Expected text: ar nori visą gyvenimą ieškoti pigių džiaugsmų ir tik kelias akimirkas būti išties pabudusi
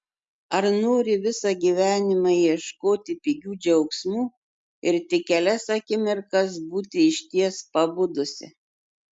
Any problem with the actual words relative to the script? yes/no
no